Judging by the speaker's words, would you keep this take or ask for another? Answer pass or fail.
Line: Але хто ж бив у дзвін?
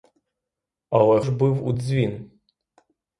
fail